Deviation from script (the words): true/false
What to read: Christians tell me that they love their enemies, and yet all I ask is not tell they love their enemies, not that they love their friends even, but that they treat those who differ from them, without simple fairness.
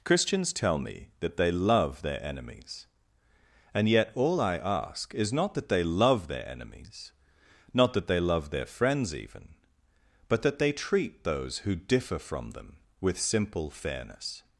true